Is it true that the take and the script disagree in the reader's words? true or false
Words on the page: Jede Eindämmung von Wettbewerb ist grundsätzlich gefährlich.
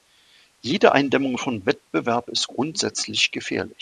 false